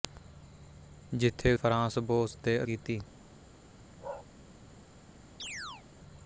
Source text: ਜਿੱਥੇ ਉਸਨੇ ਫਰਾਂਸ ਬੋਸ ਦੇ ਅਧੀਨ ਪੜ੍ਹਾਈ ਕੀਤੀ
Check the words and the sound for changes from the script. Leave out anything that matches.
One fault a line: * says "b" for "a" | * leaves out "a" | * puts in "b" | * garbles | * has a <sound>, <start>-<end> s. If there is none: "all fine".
* leaves out "ਉਸਨੇ"
* leaves out "ਅਧੀਨ ਪੜ੍ਹਾਈ"
* has a bark, 4.0-4.3 s
* has a chirp, 5.4-5.9 s